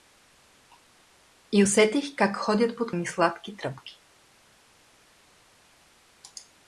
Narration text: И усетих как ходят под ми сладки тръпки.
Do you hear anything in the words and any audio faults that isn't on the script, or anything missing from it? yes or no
no